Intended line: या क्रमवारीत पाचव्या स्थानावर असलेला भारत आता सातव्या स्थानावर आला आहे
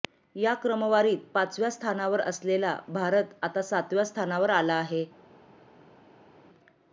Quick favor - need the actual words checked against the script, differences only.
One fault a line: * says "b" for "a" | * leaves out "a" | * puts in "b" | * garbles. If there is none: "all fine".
all fine